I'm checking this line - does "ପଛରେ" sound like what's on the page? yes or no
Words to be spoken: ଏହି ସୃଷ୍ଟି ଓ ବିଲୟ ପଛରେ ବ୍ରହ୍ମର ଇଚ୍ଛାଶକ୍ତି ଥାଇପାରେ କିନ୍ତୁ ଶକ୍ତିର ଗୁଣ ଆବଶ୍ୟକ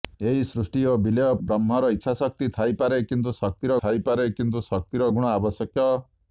no